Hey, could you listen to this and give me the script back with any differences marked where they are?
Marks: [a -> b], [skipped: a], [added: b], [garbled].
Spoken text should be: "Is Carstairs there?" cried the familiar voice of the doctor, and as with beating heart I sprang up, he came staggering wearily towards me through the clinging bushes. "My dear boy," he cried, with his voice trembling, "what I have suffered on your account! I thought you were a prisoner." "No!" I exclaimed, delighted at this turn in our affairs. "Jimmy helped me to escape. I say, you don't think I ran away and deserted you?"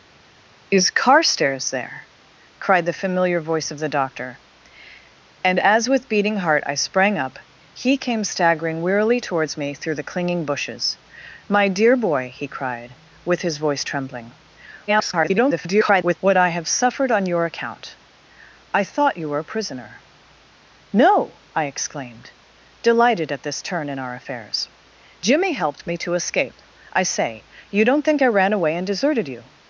"Is Carstairs there?" cried the familiar voice of the doctor, and as with beating heart I sprang up, he came staggering wearily towards me through the clinging bushes. "My dear boy," he cried, with his voice trembling, [garbled] "what I have suffered on your account! I thought you were a prisoner." "No!" I exclaimed, delighted at this turn in our affairs. "Jimmy helped me to escape. I say, you don't think I ran away and deserted you?"